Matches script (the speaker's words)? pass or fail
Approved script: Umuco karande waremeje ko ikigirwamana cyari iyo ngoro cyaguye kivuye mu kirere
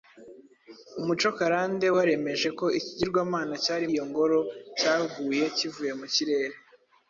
pass